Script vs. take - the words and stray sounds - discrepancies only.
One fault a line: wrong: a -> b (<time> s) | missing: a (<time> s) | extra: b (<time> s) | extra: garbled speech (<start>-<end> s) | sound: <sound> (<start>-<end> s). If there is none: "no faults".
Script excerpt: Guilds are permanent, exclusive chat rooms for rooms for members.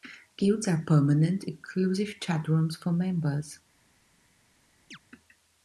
missing: rooms for (2.9 s)
sound: chirp (4.9-5.0 s)